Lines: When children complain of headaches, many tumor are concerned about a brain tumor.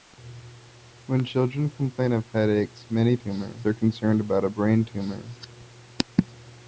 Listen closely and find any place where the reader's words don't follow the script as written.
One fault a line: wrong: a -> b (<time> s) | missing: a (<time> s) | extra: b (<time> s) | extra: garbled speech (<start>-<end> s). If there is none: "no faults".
no faults